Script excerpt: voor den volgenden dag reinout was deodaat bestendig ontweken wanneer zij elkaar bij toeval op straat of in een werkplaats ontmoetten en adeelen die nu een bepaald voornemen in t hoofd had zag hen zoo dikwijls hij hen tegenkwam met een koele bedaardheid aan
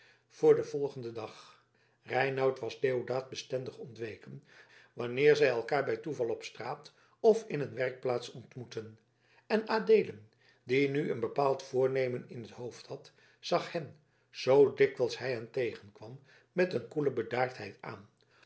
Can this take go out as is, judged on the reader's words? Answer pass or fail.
pass